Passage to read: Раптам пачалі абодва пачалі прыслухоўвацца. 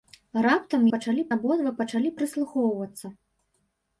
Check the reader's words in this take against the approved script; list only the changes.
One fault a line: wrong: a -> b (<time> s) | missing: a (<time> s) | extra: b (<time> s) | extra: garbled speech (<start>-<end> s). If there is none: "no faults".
no faults